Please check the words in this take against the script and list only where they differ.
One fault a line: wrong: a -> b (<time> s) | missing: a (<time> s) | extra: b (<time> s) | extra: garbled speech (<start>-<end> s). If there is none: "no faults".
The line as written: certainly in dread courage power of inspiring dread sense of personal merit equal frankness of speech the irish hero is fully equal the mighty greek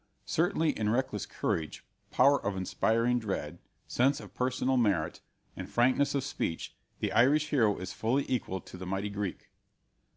wrong: dread -> reckless (0.9 s)
wrong: equal -> and (5.6 s)
extra: to (8.6 s)